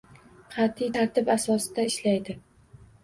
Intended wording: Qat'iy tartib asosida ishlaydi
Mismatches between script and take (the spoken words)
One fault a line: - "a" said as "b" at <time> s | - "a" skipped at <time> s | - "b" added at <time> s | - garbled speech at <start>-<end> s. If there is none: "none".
none